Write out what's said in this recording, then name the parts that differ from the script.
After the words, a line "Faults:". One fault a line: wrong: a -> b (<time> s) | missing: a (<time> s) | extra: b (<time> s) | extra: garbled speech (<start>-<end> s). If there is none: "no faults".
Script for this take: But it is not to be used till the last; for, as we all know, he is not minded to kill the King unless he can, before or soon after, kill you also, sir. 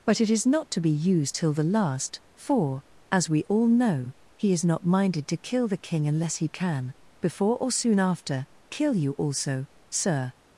But it is not to be used till the last; for, as we all know, he is not minded to kill the King unless he can, before or soon after, kill you also, sir.
Faults:
no faults